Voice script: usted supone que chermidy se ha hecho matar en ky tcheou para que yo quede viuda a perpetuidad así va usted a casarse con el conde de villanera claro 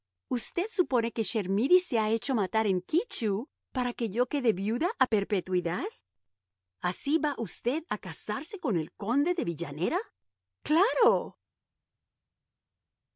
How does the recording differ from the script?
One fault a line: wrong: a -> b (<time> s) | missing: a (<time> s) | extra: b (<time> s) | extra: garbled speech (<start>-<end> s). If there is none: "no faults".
no faults